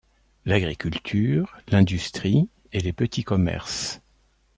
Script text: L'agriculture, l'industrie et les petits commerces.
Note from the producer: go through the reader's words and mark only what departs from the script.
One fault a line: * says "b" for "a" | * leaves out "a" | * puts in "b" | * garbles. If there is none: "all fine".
all fine